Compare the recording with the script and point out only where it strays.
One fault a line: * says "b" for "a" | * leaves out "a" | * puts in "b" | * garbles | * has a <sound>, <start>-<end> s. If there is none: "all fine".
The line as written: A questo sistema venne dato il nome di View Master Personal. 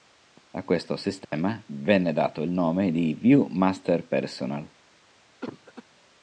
* has a dropout, 1.2-1.3 s
* has a cough, 5.4-5.8 s